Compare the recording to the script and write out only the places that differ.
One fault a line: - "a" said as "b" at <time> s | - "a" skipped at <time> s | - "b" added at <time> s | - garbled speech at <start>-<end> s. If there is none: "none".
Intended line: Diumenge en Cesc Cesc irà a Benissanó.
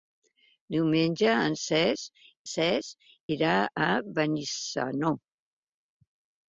none